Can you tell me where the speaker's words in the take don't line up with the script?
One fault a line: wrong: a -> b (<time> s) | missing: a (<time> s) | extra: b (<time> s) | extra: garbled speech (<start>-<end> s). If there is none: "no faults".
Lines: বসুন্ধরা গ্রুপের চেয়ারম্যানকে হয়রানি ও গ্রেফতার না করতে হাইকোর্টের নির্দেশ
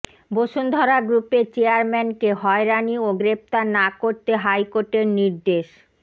no faults